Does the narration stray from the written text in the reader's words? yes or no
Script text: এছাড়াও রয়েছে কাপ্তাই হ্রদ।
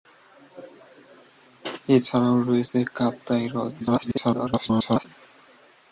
yes